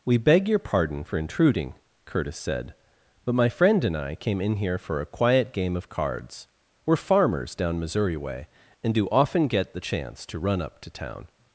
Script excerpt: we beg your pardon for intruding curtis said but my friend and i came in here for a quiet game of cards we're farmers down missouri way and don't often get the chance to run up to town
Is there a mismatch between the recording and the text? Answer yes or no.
yes